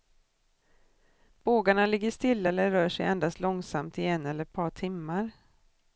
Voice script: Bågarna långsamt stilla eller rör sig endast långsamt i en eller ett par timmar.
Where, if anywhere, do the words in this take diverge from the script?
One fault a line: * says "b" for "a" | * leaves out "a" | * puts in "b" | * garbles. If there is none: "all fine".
* says "ligger" for "långsamt"